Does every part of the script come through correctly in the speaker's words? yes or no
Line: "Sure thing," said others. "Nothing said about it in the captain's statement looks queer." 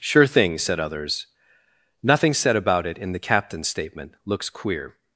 yes